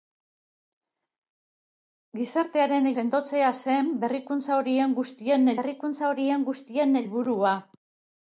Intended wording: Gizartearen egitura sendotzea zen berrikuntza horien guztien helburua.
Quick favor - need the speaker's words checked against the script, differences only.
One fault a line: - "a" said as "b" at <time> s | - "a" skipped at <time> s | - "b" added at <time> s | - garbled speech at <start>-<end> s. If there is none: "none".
- "egitura" skipped at 2.9 s
- "berrikuntza horien guztien" added at 5.6 s